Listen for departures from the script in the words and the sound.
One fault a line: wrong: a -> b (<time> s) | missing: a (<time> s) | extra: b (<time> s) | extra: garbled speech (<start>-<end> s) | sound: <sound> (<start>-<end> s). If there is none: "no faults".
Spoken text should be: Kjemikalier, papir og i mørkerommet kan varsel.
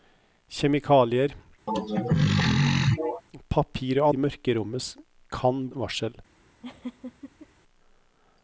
sound: throat clearing (1.7-3.2 s)
sound: laugh (6.6-7.5 s)